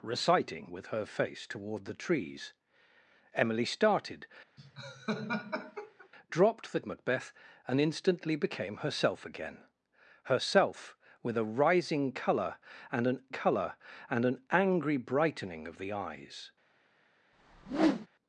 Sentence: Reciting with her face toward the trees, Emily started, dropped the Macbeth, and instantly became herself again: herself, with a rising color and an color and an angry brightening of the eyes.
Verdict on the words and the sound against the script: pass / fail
fail